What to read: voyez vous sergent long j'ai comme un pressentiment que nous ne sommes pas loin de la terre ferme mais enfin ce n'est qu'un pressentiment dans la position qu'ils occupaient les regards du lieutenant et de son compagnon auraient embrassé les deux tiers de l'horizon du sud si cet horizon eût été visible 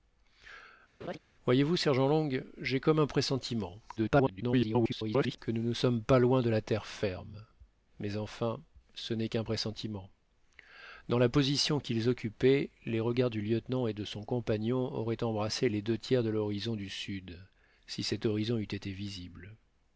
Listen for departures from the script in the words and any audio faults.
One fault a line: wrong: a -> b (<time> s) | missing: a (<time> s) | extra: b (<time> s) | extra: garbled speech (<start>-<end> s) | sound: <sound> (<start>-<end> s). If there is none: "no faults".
sound: laugh (1.0-1.2 s)
extra: garbled speech (4.0-5.4 s)